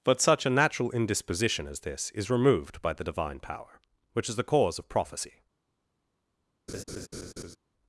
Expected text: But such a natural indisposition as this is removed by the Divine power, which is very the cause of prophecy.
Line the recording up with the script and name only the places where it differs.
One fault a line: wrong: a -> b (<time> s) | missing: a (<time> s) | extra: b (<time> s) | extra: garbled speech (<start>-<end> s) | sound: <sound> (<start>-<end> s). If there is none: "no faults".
missing: very (4.4 s)
sound: laugh (6.7-7.6 s)